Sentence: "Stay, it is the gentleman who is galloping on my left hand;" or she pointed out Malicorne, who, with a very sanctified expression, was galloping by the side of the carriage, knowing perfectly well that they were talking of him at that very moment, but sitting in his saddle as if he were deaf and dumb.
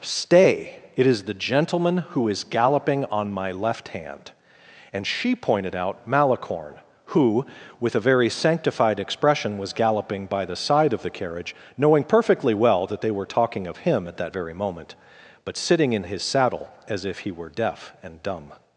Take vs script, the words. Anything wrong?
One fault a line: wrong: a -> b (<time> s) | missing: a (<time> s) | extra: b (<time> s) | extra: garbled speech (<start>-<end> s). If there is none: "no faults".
wrong: or -> and (4.9 s)